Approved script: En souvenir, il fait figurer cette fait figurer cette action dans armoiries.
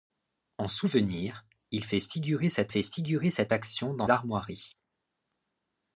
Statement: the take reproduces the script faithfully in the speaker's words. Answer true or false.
true